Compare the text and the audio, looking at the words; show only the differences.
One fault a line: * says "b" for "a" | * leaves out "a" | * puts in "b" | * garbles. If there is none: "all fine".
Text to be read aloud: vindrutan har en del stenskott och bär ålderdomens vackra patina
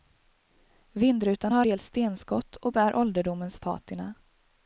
* leaves out "en"
* leaves out "vackra"